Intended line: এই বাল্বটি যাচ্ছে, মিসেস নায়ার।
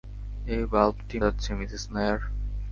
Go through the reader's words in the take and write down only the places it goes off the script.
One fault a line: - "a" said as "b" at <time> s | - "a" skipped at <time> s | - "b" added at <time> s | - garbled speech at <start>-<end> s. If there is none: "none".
none